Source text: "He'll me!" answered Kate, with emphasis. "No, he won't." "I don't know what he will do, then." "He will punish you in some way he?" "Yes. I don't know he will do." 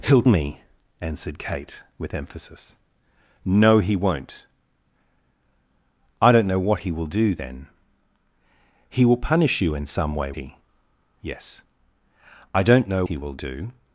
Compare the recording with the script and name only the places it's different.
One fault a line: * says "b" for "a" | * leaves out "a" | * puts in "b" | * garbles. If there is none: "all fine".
all fine